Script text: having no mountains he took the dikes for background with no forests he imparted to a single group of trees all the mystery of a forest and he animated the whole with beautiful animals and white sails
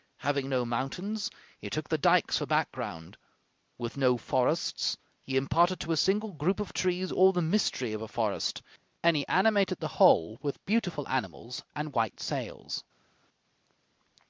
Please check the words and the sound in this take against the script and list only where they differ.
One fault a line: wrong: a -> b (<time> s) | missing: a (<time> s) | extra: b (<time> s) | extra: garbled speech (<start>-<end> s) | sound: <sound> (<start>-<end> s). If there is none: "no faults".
no faults